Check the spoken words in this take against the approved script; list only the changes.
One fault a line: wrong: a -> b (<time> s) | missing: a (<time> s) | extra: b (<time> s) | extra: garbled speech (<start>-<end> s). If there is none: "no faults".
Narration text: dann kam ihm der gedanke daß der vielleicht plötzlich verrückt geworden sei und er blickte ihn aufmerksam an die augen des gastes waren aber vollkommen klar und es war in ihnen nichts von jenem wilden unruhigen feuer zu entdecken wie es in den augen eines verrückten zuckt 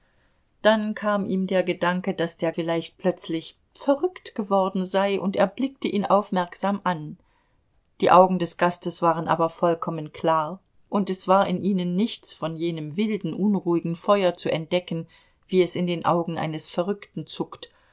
no faults